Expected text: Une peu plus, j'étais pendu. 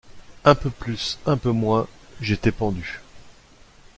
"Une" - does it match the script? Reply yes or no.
no